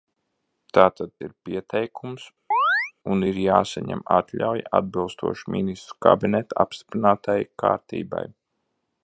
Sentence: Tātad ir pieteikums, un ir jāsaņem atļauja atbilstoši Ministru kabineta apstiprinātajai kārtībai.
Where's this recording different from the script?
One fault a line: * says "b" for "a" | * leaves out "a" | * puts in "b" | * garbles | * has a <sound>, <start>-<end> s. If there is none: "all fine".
* has a chirp, 2.5-2.9 s